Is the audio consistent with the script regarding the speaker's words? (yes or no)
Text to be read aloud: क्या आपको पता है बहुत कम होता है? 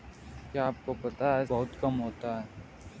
yes